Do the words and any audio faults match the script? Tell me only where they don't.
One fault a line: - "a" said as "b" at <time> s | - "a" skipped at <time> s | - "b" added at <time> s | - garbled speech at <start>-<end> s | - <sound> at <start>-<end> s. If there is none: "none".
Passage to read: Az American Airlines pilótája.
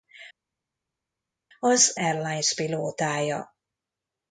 - "American" skipped at 2.0 s